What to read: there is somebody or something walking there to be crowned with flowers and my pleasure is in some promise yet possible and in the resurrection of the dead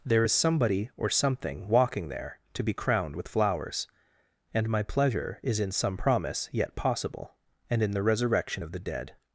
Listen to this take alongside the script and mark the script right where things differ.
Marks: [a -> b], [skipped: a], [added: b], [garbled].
there is somebody or something walking there to be crowned with flowers and my pleasure is in some promise yet possible and in the resurrection of the dead